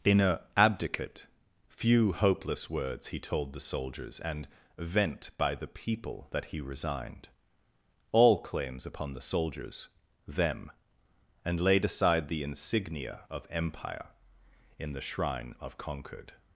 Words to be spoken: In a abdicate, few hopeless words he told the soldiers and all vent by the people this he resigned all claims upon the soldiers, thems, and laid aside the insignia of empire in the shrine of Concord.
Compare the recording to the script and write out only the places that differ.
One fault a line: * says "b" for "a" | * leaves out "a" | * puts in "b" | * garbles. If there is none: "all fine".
* leaves out "all"
* says "that" for "this"
* says "them" for "thems"